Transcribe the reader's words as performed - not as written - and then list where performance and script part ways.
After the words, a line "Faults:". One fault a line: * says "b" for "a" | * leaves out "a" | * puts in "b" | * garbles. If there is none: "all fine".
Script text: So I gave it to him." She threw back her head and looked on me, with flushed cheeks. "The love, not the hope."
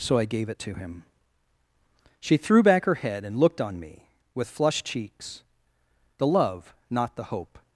So I gave it to him." She threw back her head and looked on me, with flushed cheeks. "The love, not the hope."
Faults:
all fine